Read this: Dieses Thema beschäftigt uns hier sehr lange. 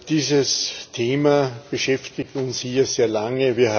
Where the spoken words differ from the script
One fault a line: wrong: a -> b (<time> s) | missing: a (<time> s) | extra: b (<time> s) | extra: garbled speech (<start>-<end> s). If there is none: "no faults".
no faults